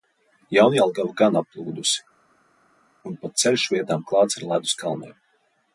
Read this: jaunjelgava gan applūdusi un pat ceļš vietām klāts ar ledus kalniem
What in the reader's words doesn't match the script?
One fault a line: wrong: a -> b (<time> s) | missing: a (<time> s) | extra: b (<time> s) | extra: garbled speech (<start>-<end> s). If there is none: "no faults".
no faults